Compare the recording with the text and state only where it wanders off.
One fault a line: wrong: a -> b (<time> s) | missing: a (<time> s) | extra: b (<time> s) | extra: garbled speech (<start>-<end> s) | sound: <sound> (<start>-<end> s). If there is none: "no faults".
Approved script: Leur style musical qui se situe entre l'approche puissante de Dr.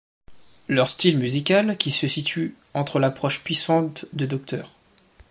no faults